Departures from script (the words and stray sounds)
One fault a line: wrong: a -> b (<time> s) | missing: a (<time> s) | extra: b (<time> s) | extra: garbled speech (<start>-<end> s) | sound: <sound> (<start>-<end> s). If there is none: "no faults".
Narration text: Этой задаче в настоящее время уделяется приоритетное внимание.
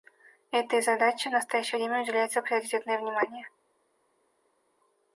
no faults